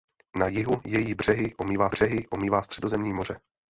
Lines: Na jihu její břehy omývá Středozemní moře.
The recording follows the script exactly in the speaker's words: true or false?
false